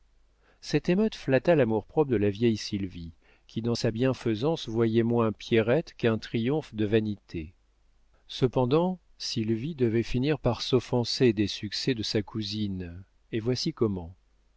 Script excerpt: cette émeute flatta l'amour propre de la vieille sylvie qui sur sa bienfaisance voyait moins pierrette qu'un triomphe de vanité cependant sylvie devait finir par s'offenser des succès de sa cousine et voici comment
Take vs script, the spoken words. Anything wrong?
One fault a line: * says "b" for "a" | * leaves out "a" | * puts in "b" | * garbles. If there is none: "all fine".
* says "dans" for "sur"